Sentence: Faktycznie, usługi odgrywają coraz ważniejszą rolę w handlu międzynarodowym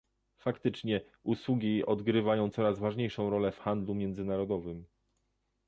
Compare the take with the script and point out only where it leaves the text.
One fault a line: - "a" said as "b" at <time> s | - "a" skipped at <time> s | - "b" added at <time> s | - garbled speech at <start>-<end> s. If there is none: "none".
none